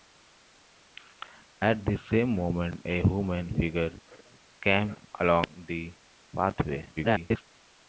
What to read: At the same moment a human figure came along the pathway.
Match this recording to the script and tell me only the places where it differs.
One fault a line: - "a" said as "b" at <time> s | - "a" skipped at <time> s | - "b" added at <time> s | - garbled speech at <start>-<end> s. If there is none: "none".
- garbled speech at 7.0-7.4 s